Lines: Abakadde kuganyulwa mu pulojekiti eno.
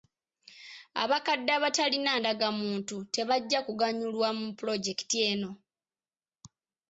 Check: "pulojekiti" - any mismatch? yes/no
no